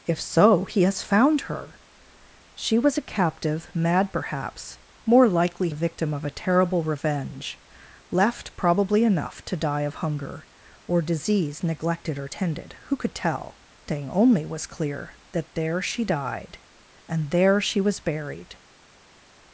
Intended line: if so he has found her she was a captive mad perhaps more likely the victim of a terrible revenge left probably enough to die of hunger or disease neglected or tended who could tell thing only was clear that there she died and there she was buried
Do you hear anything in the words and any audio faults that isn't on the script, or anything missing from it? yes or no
no